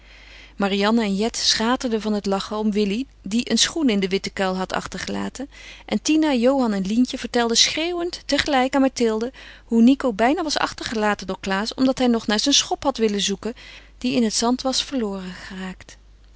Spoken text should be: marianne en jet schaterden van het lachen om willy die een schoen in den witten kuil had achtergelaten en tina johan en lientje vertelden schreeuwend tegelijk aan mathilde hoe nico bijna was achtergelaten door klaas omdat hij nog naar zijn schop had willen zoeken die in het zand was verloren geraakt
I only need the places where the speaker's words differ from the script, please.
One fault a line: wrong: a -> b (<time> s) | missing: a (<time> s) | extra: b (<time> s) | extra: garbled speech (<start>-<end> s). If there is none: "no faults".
no faults